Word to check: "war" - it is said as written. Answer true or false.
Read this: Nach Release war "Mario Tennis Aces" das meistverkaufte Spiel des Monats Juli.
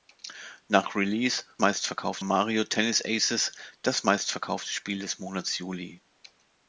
false